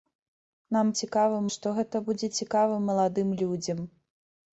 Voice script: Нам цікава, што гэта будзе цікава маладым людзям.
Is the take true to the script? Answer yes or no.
yes